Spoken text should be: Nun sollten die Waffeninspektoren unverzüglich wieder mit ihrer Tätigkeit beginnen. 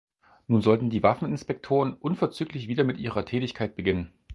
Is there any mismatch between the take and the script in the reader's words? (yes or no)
no